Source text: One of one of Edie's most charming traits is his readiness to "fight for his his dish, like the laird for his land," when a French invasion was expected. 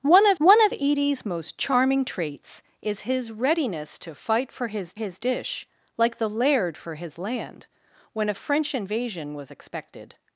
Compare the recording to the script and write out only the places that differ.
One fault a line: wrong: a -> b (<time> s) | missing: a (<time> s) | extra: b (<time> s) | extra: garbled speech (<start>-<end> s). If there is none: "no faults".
no faults